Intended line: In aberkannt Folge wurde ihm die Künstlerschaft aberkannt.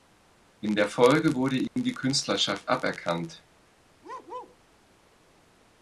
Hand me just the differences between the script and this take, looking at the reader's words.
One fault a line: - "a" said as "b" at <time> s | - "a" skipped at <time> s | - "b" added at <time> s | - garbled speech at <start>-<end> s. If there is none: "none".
- "aberkannt" said as "der" at 0.8 s